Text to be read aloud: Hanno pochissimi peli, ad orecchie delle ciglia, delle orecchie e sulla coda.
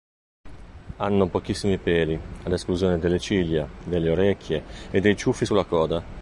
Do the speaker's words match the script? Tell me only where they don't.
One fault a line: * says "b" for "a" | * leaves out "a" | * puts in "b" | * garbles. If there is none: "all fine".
* says "esclusione" for "orecchie"
* puts in "dei ciuffi"